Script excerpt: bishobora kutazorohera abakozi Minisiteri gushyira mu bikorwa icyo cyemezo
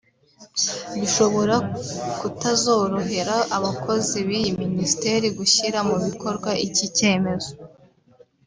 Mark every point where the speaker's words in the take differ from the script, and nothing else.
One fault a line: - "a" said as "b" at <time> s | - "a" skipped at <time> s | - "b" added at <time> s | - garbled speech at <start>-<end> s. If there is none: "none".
- "b'iyi" added at 4.3 s
- "icyo" said as "iki" at 6.7 s